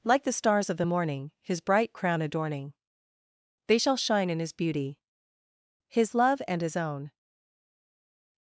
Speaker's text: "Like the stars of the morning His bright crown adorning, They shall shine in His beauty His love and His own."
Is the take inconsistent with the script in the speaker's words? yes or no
no